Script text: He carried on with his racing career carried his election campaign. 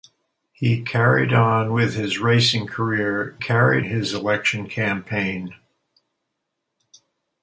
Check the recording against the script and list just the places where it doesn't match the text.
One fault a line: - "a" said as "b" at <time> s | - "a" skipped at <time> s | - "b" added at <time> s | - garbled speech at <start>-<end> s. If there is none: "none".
none